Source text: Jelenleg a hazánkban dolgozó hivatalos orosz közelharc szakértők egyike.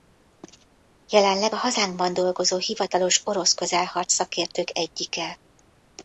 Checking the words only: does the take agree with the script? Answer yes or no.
yes